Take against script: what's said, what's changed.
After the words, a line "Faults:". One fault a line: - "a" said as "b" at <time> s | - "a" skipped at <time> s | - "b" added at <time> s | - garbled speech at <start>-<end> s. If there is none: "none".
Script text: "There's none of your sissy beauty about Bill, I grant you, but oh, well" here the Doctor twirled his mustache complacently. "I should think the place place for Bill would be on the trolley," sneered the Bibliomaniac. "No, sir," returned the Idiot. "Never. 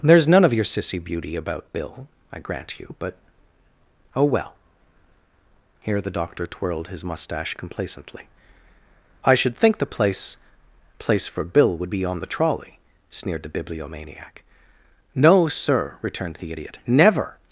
"There's none of your sissy beauty about Bill, I grant you, but oh, well" here the Doctor twirled his mustache complacently. "I should think the place place for Bill would be on the trolley," sneered the Bibliomaniac. "No, sir," returned the Idiot. "Never.
Faults:
none